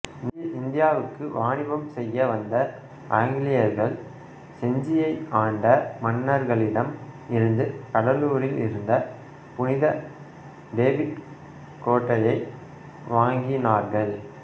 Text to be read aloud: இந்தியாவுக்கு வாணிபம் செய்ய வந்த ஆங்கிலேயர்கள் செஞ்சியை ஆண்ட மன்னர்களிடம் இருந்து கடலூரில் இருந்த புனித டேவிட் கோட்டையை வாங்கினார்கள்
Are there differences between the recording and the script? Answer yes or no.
no